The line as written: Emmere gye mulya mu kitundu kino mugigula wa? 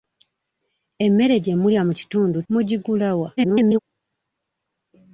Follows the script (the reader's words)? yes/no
no